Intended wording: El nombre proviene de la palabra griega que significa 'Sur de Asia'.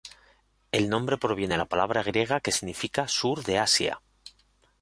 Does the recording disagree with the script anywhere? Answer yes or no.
no